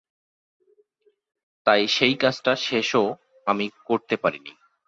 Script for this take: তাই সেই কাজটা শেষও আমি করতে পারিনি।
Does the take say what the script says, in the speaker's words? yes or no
yes